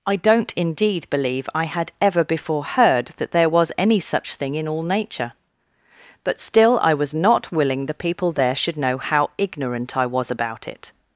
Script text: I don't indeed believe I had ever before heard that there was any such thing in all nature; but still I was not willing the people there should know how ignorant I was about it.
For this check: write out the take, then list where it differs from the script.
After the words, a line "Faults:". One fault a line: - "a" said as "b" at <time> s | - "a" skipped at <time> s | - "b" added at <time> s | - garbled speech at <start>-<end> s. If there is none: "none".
I don't indeed believe I had ever before heard that there was any such thing in all nature; but still I was not willing the people there should know how ignorant I was about it.
Faults:
none